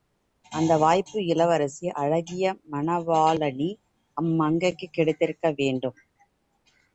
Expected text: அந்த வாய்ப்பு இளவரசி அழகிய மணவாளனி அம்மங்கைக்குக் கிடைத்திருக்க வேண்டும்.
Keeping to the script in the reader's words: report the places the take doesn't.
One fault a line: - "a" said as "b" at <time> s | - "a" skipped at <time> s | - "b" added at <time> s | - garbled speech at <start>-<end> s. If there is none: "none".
none